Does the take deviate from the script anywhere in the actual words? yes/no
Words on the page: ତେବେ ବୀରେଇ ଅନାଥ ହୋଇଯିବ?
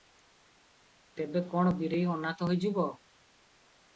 yes